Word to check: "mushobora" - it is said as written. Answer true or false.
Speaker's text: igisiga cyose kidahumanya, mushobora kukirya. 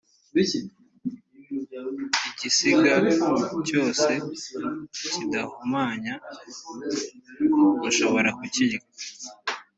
true